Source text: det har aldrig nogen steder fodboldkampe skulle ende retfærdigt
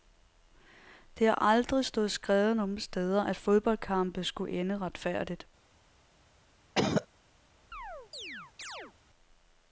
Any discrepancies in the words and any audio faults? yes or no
yes